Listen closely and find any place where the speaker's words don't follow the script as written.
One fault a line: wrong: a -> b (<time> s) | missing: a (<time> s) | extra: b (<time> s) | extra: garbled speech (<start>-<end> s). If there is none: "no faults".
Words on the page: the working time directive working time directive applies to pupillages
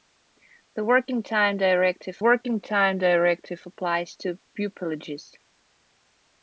no faults